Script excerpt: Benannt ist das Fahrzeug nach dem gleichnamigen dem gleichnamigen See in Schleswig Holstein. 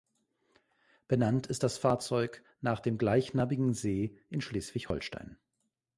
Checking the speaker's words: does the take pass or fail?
fail